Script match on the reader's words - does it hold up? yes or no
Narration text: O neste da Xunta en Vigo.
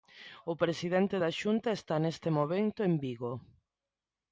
no